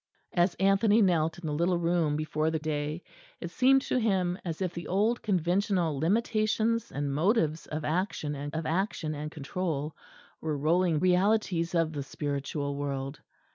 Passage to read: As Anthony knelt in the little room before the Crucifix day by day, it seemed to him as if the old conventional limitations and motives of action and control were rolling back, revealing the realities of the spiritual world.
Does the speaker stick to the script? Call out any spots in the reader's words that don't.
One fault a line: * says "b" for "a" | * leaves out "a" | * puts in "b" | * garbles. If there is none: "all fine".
* leaves out "Crucifix"
* leaves out "by day"
* puts in "of action and"
* leaves out "back revealing the"